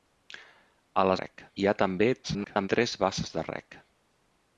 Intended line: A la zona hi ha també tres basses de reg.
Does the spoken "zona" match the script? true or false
false